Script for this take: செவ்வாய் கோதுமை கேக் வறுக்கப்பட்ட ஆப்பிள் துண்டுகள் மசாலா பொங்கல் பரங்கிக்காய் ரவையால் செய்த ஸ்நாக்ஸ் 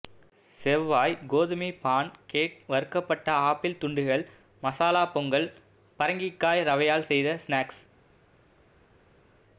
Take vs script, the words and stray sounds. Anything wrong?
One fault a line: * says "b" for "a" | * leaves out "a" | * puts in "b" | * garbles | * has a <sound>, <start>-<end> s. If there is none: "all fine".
* puts in "பான்"